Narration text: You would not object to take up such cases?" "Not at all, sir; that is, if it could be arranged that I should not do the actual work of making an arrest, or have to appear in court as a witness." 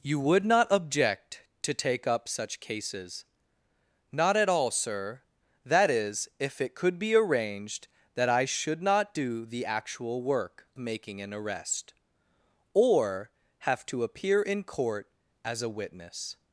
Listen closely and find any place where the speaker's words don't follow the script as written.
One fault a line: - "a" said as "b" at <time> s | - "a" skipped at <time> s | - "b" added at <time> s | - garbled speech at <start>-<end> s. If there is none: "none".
- "of" skipped at 10.7 s